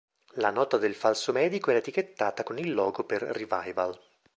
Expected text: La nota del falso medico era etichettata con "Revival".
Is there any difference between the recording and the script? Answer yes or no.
yes